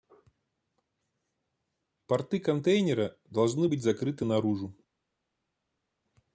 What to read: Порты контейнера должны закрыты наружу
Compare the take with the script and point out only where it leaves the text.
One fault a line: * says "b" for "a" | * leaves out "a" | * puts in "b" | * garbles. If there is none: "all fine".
* puts in "быть"